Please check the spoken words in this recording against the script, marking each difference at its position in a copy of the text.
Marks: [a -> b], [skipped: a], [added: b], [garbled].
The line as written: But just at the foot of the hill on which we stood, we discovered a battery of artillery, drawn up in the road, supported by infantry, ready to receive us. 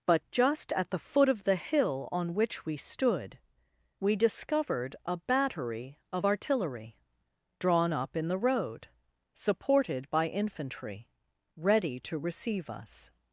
But just at the foot of the hill on which we stood, we discovered a battery of artillery, drawn up in the road, supported by infantry, ready to receive us.